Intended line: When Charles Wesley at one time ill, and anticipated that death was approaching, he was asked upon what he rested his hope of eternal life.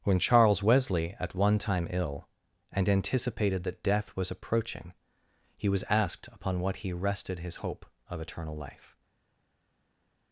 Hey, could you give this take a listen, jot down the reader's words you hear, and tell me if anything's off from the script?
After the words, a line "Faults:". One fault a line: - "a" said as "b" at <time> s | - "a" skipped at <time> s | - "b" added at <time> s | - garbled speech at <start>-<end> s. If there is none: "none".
When Charles Wesley at one time ill, and anticipated that death was approaching, he was asked upon what he rested his hope of eternal life.
Faults:
none